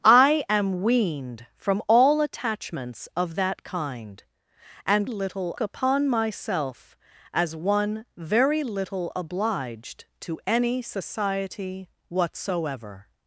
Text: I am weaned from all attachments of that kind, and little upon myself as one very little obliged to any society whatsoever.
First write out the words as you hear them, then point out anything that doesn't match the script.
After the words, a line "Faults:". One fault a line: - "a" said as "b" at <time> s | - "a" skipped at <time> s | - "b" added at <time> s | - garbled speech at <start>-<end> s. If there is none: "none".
I am weaned from all attachments of that kind, and little upon myself as one very little obliged to any society whatsoever.
Faults:
none